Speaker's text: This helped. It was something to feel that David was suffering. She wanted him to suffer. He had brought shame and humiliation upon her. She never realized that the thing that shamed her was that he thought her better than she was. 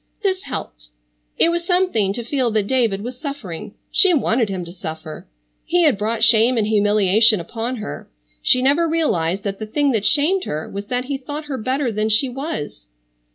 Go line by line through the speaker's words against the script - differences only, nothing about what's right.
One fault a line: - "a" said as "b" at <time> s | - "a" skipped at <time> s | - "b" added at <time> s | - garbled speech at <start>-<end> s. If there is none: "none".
none